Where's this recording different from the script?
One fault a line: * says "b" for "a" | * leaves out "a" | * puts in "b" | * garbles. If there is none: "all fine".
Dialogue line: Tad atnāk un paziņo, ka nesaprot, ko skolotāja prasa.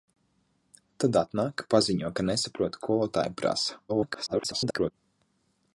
* leaves out "un"
* leaves out "ko"
* garbles